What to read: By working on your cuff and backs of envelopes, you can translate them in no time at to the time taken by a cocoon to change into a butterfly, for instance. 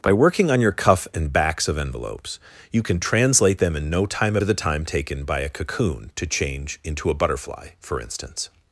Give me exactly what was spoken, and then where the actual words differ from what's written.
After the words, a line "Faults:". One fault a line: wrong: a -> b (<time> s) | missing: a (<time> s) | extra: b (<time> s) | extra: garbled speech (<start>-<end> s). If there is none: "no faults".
By working on your cuff and backs of envelopes, you can translate them in no time at to the time taken by a cocoon to change into a butterfly, for instance.
Faults:
no faults